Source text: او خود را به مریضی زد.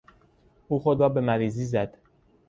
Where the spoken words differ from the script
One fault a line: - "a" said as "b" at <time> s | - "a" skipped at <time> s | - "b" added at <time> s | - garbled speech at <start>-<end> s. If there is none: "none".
none